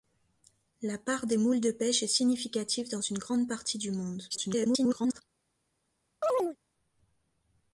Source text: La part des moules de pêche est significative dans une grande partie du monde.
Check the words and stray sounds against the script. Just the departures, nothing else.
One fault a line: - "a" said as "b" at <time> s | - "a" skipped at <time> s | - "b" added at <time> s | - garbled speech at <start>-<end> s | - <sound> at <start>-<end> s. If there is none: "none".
- garbled speech at 4.3-5.2 s
- chirp at 6.2-6.6 s